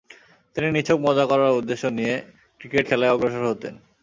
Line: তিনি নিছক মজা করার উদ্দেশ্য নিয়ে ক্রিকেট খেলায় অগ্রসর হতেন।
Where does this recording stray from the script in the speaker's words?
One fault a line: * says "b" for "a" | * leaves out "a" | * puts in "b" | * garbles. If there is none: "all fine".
all fine